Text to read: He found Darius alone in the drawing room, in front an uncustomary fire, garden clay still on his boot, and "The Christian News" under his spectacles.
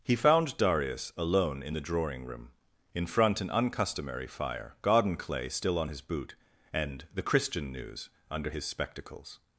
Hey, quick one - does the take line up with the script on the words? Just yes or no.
yes